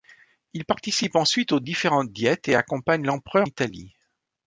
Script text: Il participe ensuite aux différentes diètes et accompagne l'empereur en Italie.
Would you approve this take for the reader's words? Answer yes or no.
no